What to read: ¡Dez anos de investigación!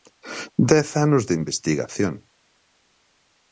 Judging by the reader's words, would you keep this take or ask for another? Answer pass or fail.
pass